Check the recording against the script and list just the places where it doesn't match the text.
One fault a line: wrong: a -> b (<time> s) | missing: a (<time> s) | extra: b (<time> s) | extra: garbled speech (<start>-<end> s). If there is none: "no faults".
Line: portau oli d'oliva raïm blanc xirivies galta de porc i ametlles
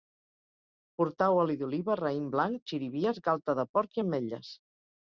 no faults